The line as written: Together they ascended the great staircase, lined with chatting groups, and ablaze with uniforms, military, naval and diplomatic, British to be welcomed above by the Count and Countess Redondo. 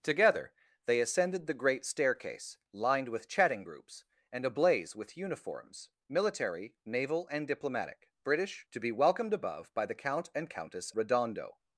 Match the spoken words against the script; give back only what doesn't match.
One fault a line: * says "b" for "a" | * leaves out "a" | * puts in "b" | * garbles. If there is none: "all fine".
all fine